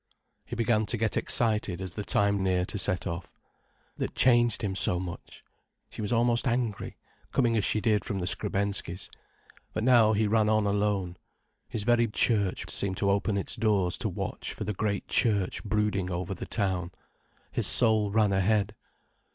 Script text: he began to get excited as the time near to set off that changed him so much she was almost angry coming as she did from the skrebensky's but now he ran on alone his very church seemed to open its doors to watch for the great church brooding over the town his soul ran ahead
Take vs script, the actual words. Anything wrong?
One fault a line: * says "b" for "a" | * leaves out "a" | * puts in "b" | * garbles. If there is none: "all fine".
all fine